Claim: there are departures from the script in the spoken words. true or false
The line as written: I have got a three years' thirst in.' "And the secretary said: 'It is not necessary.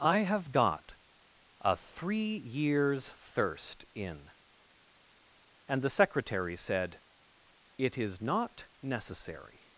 false